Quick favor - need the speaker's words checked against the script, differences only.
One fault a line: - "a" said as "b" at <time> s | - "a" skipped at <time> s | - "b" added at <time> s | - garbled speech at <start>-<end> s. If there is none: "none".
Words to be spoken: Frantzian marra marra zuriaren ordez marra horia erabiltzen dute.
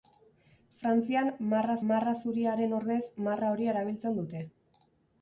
none